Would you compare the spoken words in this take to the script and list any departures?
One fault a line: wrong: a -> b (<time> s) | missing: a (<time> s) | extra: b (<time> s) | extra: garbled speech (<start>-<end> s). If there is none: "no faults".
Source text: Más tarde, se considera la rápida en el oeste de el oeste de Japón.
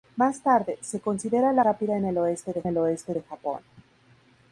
no faults